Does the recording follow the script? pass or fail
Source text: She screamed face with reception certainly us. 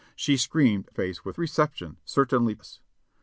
pass